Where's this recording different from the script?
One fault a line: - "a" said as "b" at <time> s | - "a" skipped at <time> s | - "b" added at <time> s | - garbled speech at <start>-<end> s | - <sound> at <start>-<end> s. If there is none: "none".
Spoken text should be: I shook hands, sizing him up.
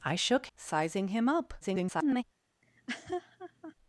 - "hands" skipped at 0.5 s
- garbled speech at 1.6-2.2 s
- laugh at 2.6-3.7 s